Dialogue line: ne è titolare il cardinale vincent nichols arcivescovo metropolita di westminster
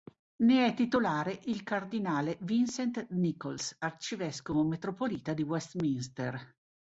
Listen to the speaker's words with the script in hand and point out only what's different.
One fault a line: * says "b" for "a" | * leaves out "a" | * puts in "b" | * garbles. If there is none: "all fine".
all fine